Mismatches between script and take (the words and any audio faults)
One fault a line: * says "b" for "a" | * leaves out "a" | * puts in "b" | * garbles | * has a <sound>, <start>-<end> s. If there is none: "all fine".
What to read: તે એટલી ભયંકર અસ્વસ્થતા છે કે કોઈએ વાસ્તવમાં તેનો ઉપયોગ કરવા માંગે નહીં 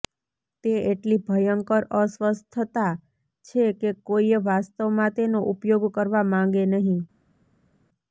all fine